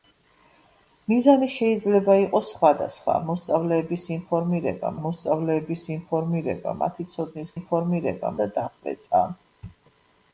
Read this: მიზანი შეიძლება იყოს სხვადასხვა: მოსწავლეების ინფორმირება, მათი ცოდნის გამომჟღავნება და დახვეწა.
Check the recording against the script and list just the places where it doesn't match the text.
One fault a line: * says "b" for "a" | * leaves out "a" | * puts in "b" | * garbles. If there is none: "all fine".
* puts in "მოსწავლეების ინფორმირება"
* says "ინფორმირება" for "გამომჟღავნება"